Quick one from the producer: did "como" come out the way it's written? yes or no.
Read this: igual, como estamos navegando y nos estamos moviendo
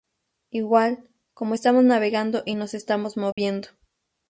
yes